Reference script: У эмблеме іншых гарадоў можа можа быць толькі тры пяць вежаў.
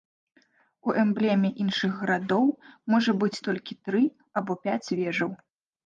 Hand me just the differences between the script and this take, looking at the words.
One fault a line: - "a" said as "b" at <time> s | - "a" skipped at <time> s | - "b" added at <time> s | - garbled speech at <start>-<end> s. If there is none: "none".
- "можа" skipped at 3.1 s
- "або" added at 4.4 s